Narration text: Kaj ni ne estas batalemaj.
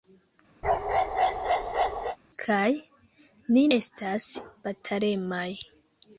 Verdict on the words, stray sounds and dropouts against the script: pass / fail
fail